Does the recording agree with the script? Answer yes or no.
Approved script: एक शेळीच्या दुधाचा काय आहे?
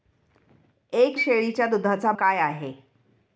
yes